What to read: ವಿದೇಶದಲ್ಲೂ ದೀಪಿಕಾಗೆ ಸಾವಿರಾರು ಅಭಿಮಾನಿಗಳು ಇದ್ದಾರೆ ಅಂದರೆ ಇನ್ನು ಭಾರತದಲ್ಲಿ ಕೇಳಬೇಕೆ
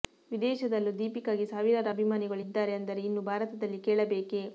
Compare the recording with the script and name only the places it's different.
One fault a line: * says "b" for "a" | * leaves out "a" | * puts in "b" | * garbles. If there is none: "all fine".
all fine